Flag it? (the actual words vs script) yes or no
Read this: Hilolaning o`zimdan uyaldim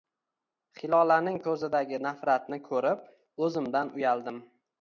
yes